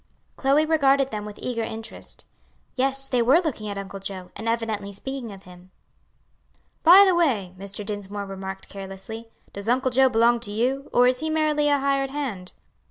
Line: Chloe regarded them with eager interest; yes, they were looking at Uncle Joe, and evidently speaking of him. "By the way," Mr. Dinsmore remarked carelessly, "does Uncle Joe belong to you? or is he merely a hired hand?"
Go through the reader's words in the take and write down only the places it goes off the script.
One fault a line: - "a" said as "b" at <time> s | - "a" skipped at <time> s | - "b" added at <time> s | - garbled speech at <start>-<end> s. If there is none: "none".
none